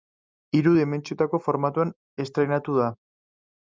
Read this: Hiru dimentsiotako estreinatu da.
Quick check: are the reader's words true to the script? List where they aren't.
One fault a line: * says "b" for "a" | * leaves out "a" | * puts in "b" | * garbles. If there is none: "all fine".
* puts in "formatoan"